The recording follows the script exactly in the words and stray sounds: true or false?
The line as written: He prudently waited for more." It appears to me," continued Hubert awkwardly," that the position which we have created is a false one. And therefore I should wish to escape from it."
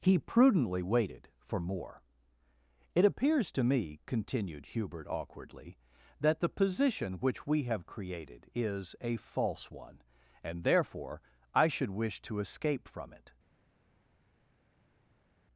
true